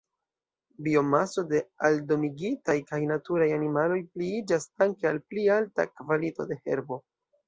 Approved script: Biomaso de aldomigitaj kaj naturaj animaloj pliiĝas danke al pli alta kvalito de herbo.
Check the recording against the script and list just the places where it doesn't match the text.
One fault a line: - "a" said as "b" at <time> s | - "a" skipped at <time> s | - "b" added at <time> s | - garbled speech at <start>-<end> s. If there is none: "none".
none